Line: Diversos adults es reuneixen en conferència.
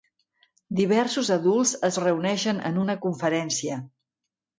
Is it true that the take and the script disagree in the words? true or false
true